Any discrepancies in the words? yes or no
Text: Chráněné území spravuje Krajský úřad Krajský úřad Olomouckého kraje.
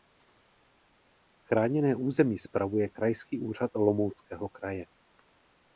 yes